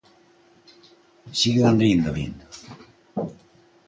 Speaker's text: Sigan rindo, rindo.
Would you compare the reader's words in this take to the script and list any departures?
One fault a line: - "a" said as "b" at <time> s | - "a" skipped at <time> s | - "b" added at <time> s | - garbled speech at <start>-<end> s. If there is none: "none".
none